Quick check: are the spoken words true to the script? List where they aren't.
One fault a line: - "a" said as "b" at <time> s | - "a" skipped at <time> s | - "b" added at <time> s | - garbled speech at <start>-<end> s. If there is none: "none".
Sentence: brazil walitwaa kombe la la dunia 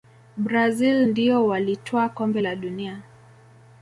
- "ndio" added at 1.0 s
- "la" skipped at 2.5 s